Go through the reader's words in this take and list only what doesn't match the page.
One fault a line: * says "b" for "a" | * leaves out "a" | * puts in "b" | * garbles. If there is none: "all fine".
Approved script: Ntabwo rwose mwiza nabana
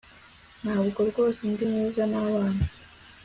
* puts in "ndi"